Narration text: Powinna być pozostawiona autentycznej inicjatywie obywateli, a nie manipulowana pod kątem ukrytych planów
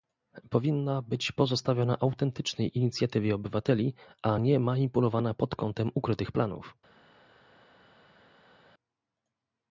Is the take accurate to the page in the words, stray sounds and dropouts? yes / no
yes